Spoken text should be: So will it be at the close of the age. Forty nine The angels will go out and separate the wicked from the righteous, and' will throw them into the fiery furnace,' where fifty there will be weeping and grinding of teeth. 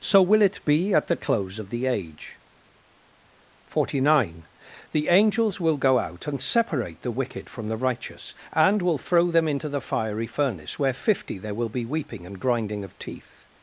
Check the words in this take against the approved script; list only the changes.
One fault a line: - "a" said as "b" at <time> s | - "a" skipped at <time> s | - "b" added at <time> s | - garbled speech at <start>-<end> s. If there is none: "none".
none